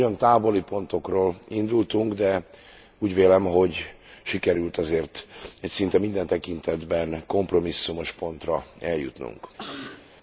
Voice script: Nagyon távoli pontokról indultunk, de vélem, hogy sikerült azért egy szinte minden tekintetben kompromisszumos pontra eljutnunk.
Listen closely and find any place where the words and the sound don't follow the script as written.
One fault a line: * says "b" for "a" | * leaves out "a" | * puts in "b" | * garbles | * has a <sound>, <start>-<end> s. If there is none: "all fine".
* puts in "úgy"
* has a cough, 9.6-10.1 s